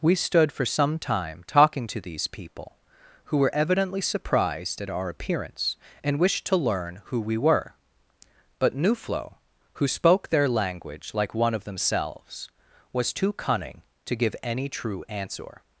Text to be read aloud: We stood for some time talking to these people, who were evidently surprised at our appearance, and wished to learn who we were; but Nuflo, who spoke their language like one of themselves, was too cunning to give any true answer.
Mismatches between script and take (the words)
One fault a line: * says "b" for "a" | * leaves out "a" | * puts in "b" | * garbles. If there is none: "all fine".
all fine